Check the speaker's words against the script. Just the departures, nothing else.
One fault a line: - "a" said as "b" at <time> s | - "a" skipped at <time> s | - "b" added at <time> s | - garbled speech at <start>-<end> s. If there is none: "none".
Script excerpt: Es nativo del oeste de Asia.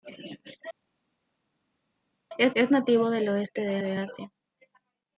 - "es" added at 2.6 s
- "de" added at 3.8 s